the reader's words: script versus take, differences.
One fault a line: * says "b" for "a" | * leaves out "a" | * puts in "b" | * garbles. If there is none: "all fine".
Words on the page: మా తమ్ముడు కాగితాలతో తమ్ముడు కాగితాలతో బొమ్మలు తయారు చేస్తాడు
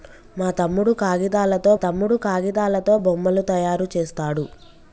all fine